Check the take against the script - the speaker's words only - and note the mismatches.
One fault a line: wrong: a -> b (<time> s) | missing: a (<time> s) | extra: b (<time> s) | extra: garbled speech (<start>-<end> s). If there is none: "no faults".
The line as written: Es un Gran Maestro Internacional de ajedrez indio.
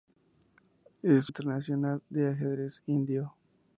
missing: un Gran Maestro (1.3 s)